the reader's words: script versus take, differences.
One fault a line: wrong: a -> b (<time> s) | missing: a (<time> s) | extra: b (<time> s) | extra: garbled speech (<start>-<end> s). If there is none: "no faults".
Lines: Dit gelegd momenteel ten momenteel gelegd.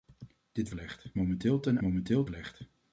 no faults